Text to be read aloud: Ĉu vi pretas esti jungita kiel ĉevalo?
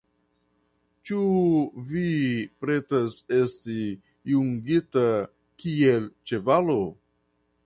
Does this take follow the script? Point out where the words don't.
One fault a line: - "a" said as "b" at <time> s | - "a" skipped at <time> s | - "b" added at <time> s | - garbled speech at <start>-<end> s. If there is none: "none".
none